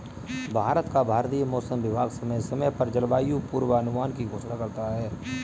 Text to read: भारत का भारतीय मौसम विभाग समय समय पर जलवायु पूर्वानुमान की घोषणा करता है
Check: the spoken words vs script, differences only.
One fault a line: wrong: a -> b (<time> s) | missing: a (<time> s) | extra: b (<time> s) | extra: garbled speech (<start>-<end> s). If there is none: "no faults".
no faults